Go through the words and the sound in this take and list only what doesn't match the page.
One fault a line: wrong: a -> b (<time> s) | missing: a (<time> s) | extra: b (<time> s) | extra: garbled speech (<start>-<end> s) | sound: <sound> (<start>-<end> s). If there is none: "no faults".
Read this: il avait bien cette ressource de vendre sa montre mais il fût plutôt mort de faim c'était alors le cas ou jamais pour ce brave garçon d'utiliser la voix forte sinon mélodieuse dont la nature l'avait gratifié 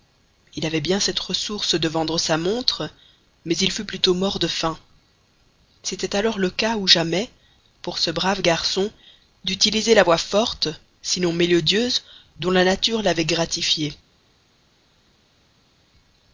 no faults